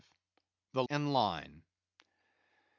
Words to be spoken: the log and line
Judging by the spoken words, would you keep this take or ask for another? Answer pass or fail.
fail